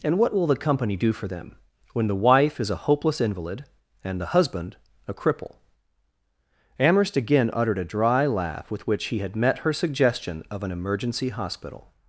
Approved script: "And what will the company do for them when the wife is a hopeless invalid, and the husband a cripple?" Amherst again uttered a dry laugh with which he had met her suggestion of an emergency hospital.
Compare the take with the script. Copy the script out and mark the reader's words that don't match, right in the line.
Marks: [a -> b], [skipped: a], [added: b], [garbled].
"And what will the company do for them when the wife is a hopeless invalid, and the husband a cripple?" Amherst again uttered a dry laugh with which he had met her suggestion of an emergency hospital.